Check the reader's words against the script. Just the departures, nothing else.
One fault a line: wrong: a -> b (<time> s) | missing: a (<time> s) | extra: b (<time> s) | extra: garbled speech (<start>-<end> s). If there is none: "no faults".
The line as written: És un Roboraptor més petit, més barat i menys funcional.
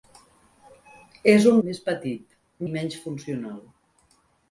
missing: Roboraptor (1.6 s)
missing: més barat (2.4 s)